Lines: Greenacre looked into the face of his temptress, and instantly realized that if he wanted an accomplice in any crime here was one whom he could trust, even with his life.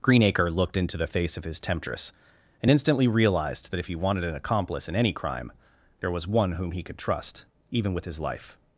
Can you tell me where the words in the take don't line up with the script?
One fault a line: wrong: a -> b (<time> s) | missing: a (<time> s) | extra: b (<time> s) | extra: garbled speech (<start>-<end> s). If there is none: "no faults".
wrong: here -> there (6.0 s)